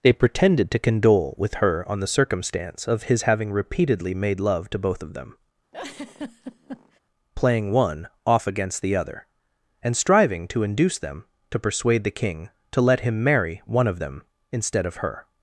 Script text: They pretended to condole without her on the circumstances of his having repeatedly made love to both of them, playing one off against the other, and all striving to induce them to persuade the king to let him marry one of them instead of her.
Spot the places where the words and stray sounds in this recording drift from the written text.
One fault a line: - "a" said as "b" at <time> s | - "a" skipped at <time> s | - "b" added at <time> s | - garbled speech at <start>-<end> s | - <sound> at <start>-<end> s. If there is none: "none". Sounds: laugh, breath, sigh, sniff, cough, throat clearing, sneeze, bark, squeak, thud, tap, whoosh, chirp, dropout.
- "without" said as "with" at 1.4 s
- "circumstances" said as "circumstance" at 2.1 s
- laugh at 5.7-7.0 s
- "all" skipped at 9.9 s